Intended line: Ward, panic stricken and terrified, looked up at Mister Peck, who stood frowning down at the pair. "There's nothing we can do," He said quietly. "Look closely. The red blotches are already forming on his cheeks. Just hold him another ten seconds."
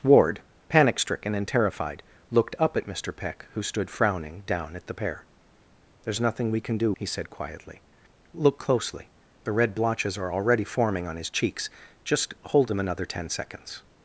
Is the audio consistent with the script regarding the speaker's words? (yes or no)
yes